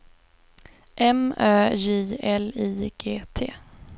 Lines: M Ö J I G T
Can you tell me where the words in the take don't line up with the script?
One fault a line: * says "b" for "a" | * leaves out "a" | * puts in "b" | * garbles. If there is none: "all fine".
* puts in "L"